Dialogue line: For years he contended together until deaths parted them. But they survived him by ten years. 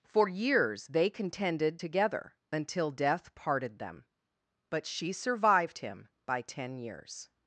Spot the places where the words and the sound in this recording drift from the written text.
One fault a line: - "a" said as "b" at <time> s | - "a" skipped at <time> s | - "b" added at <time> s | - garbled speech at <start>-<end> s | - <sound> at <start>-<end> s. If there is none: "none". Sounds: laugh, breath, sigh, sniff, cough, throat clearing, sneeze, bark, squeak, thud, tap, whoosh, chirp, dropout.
- "he" said as "they" at 0.9 s
- "deaths" said as "death" at 2.9 s
- "they" said as "she" at 4.9 s